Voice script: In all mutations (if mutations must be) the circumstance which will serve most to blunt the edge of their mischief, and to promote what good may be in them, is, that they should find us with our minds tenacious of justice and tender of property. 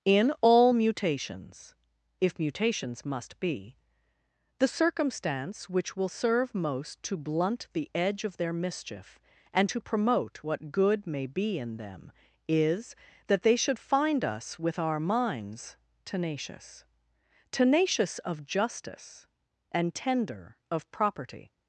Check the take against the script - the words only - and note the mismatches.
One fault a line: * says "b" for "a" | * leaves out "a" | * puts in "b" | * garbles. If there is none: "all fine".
* puts in "tenacious"